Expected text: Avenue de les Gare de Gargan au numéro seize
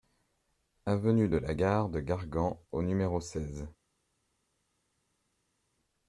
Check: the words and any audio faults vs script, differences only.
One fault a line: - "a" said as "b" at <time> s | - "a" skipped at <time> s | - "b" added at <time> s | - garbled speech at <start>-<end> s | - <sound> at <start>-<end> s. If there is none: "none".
- "les" said as "la" at 1.3 s